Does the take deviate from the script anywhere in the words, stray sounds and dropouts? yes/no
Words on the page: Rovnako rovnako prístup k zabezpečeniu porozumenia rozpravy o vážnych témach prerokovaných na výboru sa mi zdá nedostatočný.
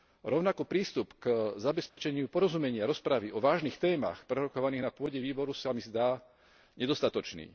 yes